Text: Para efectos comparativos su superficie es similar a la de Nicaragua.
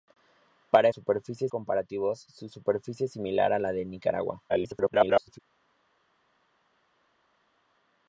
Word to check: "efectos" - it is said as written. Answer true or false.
false